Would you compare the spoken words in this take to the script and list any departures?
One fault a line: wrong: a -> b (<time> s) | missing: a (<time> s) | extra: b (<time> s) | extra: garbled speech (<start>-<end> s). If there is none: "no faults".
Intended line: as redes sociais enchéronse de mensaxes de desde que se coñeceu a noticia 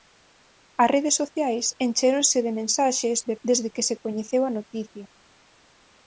no faults